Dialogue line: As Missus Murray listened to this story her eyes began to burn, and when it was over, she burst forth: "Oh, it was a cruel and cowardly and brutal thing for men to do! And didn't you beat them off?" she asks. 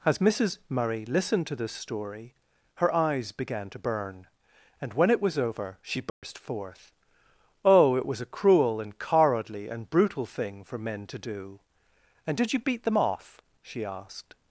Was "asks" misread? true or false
true